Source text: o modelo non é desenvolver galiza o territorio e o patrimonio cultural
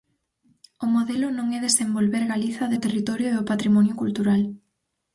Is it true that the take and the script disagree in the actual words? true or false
false